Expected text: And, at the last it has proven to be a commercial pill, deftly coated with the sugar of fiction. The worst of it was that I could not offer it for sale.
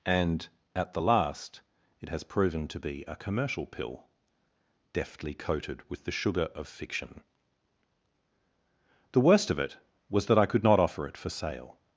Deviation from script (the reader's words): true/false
false